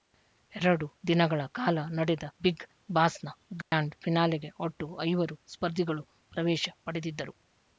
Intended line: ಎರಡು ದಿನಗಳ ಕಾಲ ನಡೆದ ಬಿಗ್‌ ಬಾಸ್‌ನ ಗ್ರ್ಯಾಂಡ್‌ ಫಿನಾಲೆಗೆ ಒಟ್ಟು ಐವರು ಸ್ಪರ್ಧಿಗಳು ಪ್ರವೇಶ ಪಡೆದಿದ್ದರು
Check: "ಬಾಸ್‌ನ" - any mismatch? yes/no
no